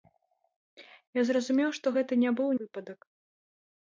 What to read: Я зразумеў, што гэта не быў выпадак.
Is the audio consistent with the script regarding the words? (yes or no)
yes